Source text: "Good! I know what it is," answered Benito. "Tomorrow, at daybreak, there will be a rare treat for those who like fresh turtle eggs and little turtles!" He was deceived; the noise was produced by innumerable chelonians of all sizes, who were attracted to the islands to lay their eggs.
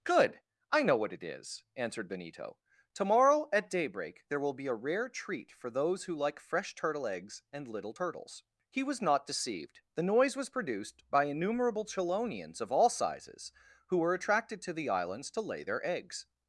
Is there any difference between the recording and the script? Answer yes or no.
yes